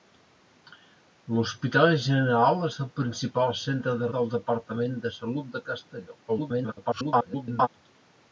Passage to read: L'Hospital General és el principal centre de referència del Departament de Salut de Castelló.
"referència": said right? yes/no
no